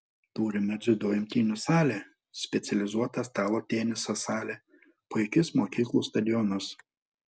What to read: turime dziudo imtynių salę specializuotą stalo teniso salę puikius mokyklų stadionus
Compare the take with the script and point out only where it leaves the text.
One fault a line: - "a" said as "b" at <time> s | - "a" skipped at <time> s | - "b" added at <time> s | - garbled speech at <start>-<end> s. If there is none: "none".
none